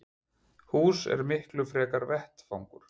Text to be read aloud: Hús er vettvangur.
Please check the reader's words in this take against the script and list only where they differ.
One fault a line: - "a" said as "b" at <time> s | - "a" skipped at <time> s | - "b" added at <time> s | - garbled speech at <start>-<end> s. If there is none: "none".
- "miklu frekar" added at 1.3 s